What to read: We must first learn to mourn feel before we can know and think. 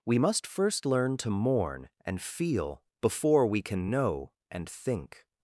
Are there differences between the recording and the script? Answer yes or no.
yes